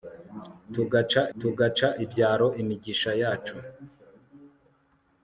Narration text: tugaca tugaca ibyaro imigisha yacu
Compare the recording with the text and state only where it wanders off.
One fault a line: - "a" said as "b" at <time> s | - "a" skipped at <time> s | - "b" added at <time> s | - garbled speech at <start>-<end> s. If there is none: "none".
none